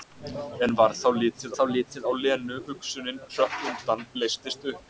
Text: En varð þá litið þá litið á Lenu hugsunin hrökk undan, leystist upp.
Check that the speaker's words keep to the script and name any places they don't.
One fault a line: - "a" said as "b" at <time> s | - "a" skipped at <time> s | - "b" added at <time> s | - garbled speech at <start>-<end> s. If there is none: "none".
none